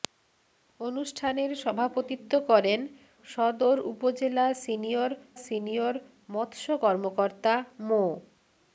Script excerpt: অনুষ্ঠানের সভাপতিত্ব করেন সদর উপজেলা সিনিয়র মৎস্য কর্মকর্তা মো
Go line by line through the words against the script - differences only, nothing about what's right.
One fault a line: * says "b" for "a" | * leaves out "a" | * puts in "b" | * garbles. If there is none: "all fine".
* puts in "সিনিয়র"